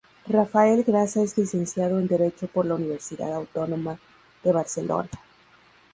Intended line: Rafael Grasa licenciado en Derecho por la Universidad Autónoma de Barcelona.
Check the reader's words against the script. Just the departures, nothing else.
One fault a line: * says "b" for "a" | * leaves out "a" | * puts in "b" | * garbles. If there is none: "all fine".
* puts in "es"